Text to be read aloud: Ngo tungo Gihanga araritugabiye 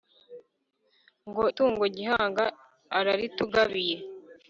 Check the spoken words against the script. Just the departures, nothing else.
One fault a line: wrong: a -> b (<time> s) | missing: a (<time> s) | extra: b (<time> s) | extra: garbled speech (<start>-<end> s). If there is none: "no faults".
no faults